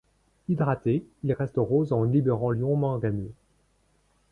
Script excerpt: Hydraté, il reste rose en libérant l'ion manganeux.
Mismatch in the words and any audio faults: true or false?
false